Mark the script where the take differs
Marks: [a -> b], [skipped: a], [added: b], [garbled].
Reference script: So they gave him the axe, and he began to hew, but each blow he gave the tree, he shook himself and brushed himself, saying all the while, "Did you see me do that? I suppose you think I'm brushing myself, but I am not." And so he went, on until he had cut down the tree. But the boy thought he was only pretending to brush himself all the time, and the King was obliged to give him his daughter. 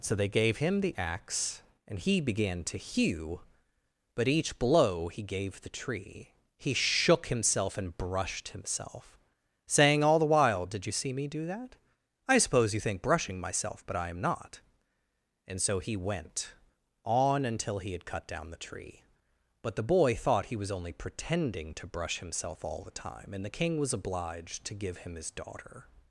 So they gave him the axe, and he began to hew, but each blow he gave the tree, he shook himself and brushed himself, saying all the while, "Did you see me do that? I suppose you think [skipped: I'm] brushing myself, but I am not." And so he went, on until he had cut down the tree. But the boy thought he was only pretending to brush himself all the time, and the King was obliged to give him his daughter.